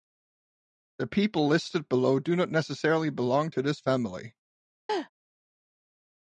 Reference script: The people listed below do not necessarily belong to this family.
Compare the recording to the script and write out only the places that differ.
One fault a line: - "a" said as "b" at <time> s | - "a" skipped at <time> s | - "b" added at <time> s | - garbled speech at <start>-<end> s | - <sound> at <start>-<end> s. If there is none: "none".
- laugh at 4.9-5.1 s